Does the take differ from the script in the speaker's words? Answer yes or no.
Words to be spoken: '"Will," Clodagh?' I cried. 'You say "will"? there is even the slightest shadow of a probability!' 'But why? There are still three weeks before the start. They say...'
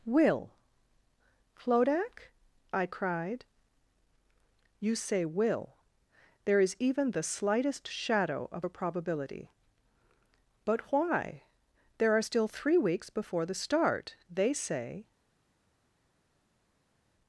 no